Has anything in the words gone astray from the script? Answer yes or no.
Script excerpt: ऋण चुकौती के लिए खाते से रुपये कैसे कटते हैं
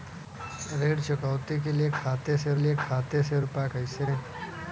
yes